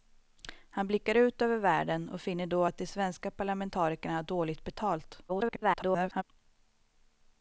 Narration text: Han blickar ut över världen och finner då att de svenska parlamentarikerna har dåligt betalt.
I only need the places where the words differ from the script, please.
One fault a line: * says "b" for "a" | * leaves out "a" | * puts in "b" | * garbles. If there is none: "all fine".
* garbles